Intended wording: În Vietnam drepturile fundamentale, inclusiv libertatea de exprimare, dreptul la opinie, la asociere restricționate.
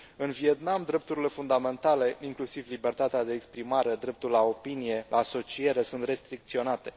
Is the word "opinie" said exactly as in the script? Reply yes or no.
yes